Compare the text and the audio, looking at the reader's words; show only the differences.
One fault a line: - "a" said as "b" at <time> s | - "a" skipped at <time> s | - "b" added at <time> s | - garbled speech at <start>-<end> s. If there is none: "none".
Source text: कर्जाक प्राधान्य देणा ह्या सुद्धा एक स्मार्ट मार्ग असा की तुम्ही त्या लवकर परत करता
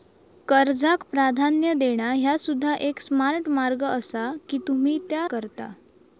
- "लवकर परत" skipped at 5.3 s